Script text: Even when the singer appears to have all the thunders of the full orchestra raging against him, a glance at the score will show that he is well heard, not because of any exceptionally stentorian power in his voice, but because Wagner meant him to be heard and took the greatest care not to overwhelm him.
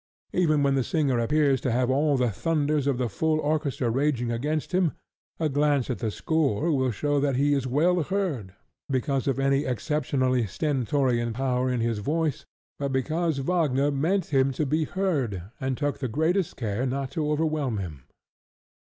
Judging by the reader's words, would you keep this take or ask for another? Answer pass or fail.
fail